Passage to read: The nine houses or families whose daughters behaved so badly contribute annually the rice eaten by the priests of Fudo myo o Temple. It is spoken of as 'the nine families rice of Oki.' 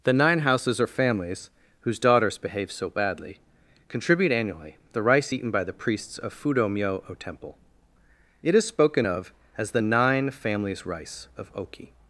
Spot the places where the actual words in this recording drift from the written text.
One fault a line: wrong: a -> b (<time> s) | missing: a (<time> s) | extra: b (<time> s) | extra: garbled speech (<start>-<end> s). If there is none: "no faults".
wrong: behaved -> behave (2.4 s)